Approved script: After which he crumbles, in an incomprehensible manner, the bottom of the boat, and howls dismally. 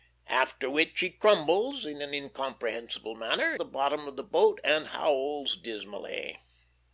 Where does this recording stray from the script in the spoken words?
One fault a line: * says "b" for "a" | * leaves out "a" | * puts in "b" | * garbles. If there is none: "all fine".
all fine